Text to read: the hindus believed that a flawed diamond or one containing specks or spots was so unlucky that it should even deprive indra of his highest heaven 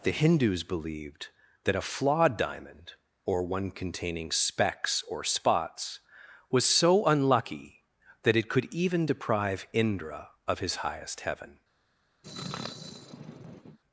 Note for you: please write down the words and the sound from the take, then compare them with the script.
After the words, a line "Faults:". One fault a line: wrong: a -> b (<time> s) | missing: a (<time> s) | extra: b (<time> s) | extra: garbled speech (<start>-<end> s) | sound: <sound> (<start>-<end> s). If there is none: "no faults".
the hindus believed that a flawed diamond or one containing specks or spots was so unlucky that it could even deprive indra of his highest heaven
Faults:
wrong: should -> could (8.5 s)
sound: sneeze (12.2-13.8 s)